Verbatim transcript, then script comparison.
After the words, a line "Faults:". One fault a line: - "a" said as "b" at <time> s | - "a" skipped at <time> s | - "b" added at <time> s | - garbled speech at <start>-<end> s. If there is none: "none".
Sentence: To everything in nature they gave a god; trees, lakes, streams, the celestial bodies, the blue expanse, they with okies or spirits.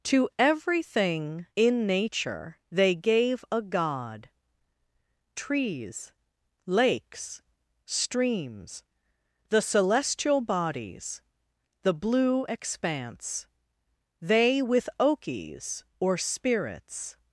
To everything in nature they gave a god; trees, lakes, streams, the celestial bodies, the blue expanse, they with okies or spirits.
Faults:
none